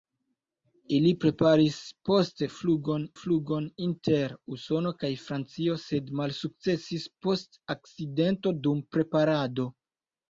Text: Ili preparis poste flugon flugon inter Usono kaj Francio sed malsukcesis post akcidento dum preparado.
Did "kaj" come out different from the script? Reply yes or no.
no